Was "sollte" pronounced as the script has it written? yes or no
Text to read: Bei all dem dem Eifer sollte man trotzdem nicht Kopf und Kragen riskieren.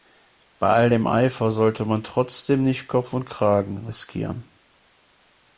yes